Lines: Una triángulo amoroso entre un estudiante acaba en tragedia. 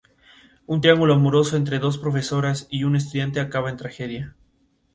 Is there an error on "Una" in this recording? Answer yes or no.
yes